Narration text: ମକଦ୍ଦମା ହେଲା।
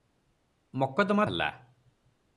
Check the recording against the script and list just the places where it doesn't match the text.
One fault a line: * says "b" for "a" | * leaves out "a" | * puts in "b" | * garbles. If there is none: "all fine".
all fine